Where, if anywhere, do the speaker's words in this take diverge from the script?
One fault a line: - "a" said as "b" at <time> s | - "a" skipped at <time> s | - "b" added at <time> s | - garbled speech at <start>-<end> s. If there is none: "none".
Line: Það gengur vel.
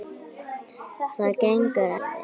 none